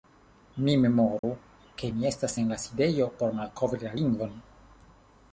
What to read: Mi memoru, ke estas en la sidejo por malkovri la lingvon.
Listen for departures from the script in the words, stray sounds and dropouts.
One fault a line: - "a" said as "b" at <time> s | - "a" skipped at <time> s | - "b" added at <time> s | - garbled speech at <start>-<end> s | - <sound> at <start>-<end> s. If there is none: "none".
- dropout at 1.2-1.2 s
- "mi" added at 2.0 s